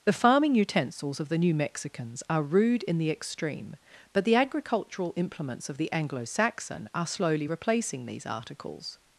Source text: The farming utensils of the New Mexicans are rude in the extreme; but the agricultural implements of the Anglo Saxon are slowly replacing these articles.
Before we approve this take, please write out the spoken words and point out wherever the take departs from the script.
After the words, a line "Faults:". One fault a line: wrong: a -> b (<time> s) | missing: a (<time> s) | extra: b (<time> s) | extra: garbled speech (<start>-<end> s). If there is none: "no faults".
The farming utensils of the New Mexicans are rude in the extreme; but the agricultural implements of the Anglo Saxon are slowly replacing these articles.
Faults:
no faults